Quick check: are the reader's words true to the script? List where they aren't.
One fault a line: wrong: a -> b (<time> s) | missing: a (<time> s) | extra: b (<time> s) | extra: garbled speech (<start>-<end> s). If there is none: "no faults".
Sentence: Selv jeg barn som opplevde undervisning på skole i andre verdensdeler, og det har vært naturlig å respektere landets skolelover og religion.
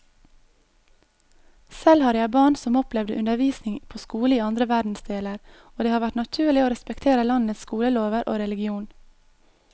extra: har (2.0 s)